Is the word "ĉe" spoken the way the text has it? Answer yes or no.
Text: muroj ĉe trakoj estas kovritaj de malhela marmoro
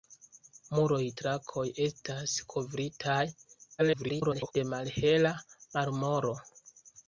no